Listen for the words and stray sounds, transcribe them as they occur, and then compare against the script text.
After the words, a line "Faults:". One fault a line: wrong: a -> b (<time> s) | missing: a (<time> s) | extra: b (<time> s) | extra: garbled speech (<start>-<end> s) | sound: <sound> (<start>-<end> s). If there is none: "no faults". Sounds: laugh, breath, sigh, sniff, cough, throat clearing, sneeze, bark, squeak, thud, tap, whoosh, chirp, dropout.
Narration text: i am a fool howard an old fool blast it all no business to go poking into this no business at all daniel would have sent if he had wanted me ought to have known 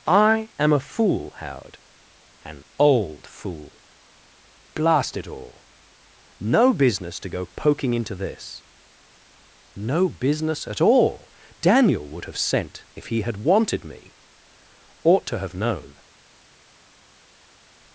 i am a fool howard an old fool blast it all no business to go poking into this no business at all daniel would have sent if he had wanted me ought to have known
Faults:
no faults